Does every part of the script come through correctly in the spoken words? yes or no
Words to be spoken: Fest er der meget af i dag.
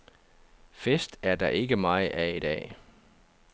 no